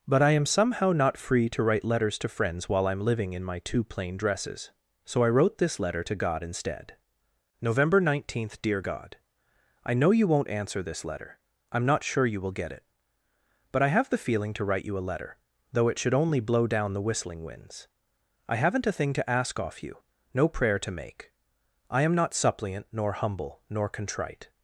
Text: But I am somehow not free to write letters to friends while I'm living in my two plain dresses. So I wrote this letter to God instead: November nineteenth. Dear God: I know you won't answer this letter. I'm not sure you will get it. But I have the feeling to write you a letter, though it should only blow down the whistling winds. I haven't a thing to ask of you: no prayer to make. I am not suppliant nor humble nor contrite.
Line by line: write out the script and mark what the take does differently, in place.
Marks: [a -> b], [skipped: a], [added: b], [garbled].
But I am somehow not free to write letters to friends while I'm living in my two plain dresses. So I wrote this letter to God instead: November nineteenth. Dear God: I know you won't answer this letter. I'm not sure you will get it. But I have the feeling to write you a letter, though it should only blow down the whistling winds. I haven't a thing to ask [of -> off] you: no prayer to make. I am not suppliant nor humble nor contrite.